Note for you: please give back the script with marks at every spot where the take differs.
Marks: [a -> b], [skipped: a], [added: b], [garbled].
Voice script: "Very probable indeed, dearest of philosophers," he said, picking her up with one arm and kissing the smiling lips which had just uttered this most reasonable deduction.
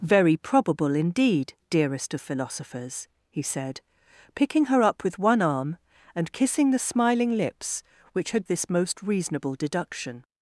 "Very probable indeed, dearest of philosophers," he said, picking her up with one arm and kissing the smiling lips which had [skipped: just uttered] this most reasonable deduction.